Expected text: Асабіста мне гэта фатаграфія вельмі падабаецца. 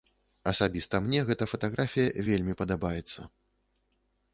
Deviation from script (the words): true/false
false